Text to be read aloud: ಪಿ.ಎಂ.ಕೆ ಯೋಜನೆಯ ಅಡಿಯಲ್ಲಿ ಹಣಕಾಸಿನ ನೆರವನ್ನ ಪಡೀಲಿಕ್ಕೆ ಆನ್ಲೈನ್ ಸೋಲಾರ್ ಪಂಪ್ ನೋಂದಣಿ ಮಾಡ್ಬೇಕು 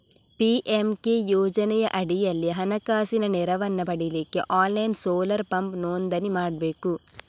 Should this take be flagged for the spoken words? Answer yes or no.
no